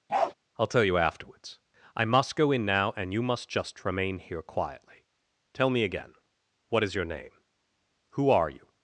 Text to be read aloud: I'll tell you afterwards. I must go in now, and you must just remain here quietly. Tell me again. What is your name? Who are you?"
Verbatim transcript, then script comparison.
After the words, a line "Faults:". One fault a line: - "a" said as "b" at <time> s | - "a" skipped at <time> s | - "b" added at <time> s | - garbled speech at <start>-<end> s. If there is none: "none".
I'll tell you afterwards. I must go in now, and you must just remain here quietly. Tell me again. What is your name? Who are you?"
Faults:
none